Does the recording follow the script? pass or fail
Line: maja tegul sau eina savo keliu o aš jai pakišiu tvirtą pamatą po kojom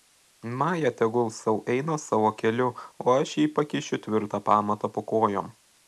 pass